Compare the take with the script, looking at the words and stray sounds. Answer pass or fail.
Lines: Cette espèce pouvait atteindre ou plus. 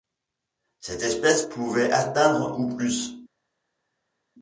pass